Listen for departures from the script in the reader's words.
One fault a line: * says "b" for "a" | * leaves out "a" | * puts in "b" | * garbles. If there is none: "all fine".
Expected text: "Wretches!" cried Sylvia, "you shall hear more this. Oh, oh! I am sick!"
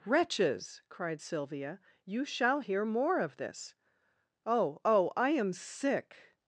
* puts in "of"